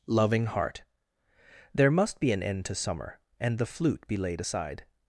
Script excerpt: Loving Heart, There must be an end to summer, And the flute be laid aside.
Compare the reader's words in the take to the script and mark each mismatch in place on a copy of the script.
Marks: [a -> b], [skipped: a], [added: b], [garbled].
Loving Heart, There must be an end to summer, And the flute be laid aside.